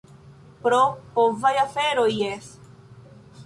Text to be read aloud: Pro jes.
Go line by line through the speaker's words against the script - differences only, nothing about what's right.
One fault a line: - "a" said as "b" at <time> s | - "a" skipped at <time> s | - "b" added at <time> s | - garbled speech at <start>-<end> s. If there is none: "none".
- "povaj aferoj" added at 1.2 s